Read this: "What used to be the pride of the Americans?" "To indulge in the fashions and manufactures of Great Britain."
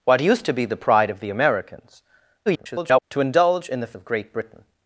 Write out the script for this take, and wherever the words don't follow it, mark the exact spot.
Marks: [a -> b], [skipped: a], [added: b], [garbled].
"What used to be the pride of the Americans?" [garbled] "To indulge in the [skipped: fashions and manufactures] of Great Britain."